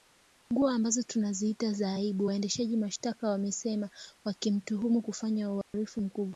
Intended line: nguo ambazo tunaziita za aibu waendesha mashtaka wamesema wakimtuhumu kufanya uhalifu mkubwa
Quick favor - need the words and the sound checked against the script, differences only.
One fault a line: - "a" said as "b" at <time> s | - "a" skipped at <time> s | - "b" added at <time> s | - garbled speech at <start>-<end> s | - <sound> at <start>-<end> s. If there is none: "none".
- dropout at 5.6-5.7 s